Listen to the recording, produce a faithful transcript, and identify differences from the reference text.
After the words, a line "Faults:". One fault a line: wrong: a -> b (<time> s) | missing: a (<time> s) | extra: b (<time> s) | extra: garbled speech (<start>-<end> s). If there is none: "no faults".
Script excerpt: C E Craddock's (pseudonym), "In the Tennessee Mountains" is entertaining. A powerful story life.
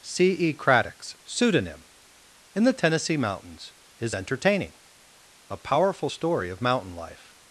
C E Craddock's (pseudonym), "In the Tennessee Mountains" is entertaining. A powerful story of mountain life.
Faults:
extra: of mountain (6.5 s)